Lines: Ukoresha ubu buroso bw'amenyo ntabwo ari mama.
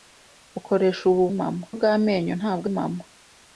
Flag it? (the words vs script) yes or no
yes